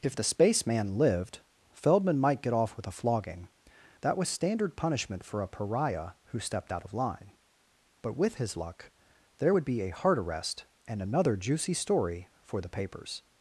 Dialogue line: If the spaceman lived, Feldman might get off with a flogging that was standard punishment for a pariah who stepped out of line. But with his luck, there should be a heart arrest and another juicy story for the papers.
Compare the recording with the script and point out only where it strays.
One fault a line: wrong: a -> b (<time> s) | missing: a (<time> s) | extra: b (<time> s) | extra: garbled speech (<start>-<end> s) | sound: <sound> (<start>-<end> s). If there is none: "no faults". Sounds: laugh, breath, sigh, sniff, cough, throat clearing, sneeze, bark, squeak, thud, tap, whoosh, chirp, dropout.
wrong: should -> would (9.5 s)